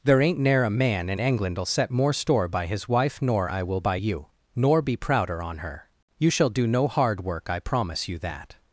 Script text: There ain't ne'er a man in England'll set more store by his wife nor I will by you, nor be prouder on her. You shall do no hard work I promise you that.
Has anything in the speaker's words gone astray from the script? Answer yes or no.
no